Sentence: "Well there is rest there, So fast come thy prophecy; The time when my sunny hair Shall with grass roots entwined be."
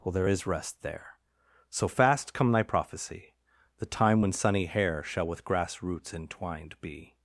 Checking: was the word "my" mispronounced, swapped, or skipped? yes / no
yes